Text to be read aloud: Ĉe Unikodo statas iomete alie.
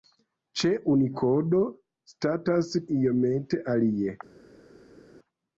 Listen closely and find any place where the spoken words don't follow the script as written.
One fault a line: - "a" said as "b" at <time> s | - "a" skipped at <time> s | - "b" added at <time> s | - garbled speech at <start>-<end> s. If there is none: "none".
none